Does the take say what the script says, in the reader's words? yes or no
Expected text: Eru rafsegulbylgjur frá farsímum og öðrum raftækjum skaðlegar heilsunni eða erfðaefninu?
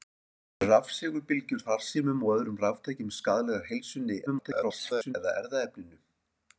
no